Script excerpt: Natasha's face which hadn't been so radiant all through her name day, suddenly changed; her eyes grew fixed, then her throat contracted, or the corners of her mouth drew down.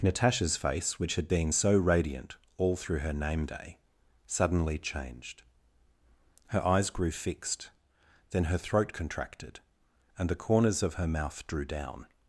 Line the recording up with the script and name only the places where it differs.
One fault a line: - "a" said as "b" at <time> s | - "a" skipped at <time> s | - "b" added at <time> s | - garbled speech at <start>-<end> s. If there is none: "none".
- "hadn't" said as "had" at 1.1 s
- "or" said as "and" at 10.2 s